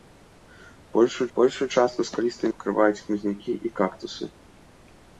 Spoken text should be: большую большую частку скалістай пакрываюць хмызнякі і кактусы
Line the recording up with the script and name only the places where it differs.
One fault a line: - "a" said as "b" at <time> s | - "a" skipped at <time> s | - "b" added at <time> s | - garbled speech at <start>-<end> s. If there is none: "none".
none